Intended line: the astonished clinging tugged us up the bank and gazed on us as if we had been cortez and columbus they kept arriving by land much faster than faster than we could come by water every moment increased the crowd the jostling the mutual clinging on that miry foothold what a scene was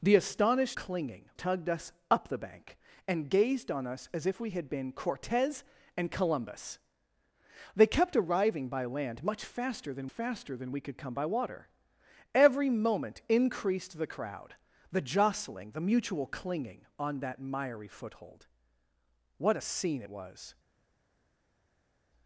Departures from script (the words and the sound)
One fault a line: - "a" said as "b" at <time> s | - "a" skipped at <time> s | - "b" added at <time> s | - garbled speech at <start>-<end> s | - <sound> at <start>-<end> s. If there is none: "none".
none